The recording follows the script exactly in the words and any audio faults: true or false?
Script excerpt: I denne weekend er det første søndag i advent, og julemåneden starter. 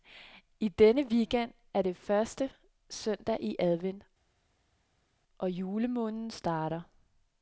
true